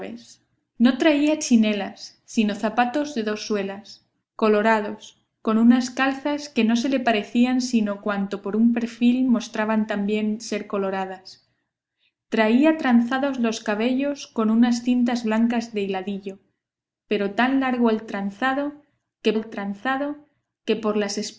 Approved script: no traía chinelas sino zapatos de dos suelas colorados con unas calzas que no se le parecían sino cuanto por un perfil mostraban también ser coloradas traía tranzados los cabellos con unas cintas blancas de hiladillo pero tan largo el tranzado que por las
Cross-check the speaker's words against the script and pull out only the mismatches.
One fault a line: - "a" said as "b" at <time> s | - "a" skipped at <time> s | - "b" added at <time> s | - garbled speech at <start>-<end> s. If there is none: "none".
- "el tranzado que" added at 19.3 s